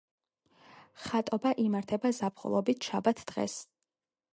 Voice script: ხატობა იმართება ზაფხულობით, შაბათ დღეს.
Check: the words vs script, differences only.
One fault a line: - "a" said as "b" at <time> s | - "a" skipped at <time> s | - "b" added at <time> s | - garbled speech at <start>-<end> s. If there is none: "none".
none